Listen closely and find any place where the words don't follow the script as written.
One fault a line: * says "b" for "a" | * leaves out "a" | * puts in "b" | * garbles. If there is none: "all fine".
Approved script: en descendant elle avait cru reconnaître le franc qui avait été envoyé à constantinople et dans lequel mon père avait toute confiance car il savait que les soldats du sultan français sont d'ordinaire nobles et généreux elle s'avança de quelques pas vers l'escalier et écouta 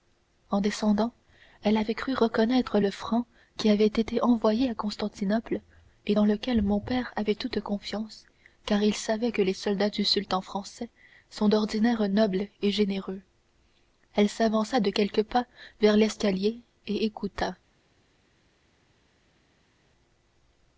all fine